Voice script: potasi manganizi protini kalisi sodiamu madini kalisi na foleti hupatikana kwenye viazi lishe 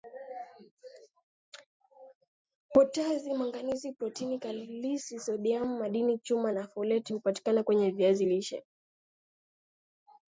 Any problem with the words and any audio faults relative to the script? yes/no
yes